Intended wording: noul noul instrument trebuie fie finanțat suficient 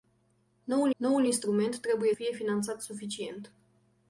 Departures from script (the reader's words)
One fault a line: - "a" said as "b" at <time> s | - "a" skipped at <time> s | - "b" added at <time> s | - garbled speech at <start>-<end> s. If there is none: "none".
none